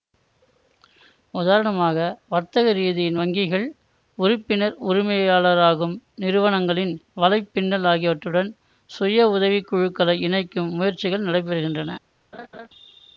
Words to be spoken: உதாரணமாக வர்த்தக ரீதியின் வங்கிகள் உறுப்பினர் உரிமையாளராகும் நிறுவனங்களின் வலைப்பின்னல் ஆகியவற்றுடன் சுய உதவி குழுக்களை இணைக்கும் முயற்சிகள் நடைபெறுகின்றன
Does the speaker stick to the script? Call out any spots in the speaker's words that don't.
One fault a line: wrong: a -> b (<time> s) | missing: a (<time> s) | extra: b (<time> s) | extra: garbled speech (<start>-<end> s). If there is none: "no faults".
no faults